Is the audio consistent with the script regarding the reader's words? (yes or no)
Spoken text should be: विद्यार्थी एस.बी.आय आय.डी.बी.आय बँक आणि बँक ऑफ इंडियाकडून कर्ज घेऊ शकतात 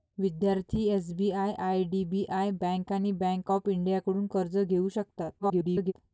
no